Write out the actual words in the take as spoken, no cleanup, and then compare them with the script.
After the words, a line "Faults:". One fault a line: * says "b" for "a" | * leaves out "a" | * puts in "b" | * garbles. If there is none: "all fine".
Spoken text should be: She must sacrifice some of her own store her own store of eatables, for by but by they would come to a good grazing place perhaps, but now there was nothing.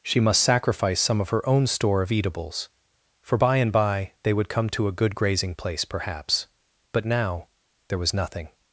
She must sacrifice some of her own store of eatables, for by and by they would come to a good grazing place perhaps, but now there was nothing.
Faults:
* leaves out "her own store"
* says "and" for "but"